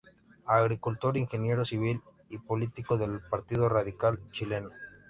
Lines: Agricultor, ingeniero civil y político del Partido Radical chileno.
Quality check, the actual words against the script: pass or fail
pass